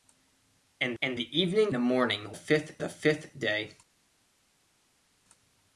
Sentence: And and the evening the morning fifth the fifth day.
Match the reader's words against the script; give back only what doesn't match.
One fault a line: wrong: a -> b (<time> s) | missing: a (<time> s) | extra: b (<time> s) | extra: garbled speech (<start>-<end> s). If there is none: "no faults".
no faults